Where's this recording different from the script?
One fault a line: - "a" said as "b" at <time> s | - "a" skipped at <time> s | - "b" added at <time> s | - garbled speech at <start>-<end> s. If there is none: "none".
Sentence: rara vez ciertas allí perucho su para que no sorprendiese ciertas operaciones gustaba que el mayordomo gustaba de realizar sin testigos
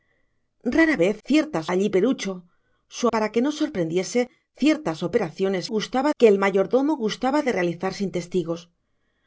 none